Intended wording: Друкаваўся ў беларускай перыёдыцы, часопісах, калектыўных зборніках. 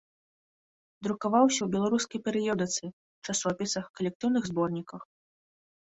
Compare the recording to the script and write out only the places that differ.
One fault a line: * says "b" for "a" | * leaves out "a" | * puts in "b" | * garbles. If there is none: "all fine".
all fine